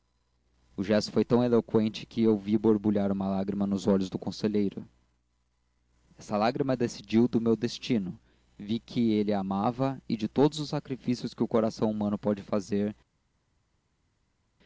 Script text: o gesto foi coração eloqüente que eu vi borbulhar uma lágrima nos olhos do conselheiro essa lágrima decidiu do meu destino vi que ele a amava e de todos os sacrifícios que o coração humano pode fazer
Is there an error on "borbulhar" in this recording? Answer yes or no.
no